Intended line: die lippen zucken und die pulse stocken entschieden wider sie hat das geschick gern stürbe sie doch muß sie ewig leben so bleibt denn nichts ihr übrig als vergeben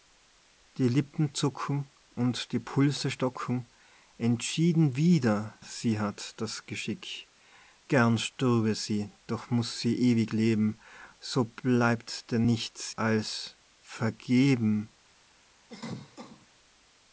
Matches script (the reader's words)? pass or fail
fail